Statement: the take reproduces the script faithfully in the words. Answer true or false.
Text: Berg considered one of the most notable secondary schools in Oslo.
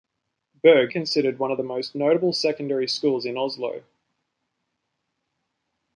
true